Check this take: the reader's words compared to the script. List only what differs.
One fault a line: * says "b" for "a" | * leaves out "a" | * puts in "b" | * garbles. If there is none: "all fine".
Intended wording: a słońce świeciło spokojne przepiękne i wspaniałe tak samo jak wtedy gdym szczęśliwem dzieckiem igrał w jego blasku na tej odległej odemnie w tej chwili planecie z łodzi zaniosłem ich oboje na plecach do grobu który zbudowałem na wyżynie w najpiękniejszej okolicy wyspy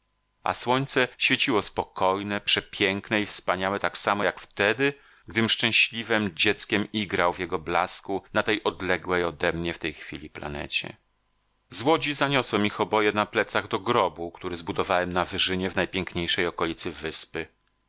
all fine